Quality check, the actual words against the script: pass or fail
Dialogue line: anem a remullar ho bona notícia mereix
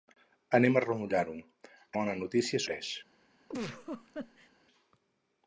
pass